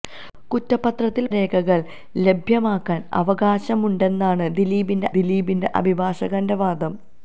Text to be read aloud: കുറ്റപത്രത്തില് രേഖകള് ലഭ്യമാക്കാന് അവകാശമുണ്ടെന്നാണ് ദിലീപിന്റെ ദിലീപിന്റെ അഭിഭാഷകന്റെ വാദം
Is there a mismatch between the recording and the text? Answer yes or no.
no